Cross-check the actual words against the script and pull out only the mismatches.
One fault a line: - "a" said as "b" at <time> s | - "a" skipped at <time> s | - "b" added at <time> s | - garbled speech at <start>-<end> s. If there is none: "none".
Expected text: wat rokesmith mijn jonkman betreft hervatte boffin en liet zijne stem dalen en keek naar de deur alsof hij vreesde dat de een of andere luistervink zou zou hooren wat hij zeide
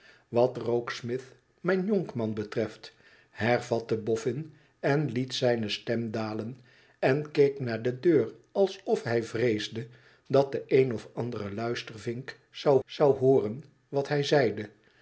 none